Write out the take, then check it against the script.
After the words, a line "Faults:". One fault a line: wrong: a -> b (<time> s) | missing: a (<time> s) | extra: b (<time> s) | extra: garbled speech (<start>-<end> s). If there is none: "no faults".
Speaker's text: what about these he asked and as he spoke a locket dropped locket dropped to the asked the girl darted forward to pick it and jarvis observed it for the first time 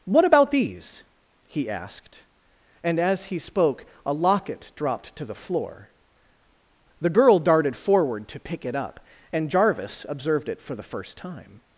what about these he asked and as he spoke a locket dropped to the floor the girl darted forward to pick it up and jarvis observed it for the first time
Faults:
missing: locket dropped (5.1 s)
wrong: asked -> floor (5.3 s)
extra: up (8.7 s)